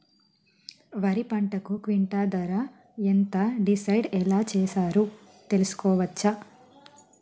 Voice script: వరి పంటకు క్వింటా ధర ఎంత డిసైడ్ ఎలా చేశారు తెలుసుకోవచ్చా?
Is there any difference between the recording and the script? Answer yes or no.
no